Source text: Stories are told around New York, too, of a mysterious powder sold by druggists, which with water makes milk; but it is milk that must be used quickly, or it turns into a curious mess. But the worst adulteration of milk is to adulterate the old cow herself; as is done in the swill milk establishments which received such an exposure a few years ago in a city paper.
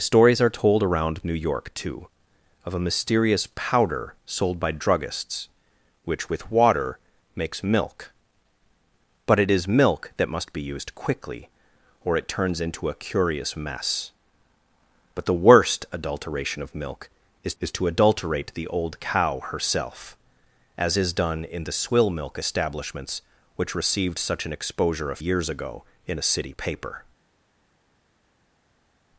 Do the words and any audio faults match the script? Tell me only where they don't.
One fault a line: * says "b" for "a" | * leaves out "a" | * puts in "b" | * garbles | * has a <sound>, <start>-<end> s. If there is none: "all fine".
* puts in "is"
* leaves out "few"